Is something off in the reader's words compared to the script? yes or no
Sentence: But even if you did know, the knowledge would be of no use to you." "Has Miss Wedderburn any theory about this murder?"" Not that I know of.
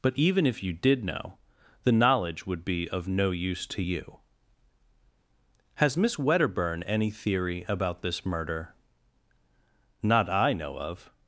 yes